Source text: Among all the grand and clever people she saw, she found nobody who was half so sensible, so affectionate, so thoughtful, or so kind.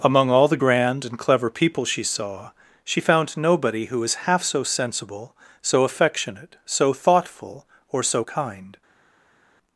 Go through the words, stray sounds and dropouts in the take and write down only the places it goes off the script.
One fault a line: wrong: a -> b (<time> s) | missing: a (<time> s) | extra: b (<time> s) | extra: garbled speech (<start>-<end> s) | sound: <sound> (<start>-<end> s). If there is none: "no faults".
no faults